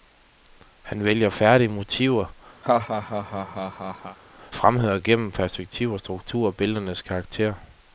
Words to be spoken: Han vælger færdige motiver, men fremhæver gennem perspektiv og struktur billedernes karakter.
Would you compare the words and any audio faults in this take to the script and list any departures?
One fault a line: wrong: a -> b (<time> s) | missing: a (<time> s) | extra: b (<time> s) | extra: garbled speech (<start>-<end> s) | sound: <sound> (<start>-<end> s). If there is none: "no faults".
missing: men (2.4 s)
sound: laugh (2.6-4.2 s)